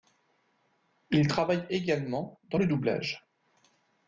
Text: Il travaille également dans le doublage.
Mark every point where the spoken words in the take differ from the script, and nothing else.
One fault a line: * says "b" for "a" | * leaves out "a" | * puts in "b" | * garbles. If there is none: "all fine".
all fine